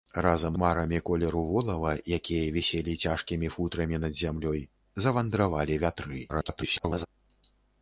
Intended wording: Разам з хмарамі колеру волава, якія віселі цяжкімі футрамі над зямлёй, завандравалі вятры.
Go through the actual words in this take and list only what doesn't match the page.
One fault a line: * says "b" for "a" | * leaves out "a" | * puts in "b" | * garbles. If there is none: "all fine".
* leaves out "з"
* garbles